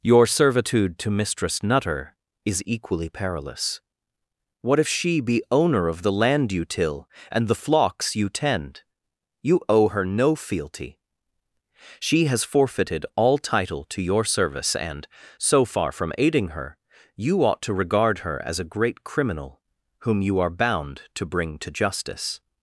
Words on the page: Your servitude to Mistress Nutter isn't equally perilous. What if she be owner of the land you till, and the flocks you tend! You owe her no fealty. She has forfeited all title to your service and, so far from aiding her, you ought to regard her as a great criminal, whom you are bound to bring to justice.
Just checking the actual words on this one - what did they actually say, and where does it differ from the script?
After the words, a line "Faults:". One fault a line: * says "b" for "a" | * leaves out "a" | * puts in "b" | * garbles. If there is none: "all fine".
Your servitude to Mistress Nutter is equally perilous. What if she be owner of the land you till, and the flocks you tend! You owe her no fealty. She has forfeited all title to your service and, so far from aiding her, you ought to regard her as a great criminal, whom you are bound to bring to justice.
Faults:
* says "is" for "isn't"